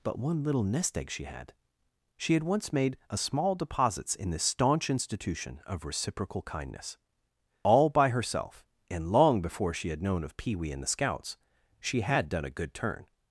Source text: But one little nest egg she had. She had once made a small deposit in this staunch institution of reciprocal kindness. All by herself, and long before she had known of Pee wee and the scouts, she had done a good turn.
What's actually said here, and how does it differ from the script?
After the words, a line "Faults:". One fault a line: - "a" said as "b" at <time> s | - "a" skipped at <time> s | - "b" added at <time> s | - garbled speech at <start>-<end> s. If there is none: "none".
But one little nest egg she had. She had once made a small deposits in this staunch institution of reciprocal kindness. All by herself, and long before she had known of Pee wee and the scouts, she had done a good turn.
Faults:
- "deposit" said as "deposits" at 3.5 s